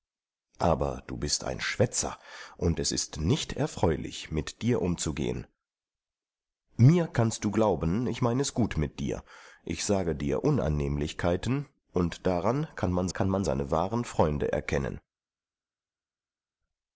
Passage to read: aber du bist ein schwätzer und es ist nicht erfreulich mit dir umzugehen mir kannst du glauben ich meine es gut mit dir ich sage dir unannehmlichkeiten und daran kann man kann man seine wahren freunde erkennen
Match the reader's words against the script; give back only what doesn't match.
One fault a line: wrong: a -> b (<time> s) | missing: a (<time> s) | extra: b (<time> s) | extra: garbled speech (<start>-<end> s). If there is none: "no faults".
no faults